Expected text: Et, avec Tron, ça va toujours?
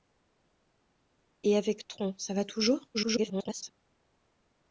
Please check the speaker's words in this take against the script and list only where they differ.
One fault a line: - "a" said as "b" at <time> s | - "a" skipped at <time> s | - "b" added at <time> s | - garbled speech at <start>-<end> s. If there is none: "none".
- garbled speech at 2.9-3.7 s